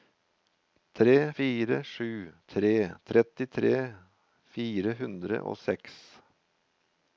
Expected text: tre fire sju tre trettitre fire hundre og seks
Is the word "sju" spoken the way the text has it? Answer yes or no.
yes